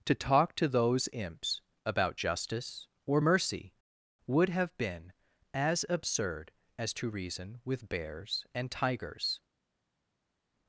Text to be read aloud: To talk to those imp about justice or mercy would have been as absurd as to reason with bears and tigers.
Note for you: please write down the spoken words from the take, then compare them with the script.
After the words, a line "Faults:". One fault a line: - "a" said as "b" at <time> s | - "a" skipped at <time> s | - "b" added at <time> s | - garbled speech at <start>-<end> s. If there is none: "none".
To talk to those imps about justice or mercy would have been as absurd as to reason with bears and tigers.
Faults:
- "imp" said as "imps" at 1.1 s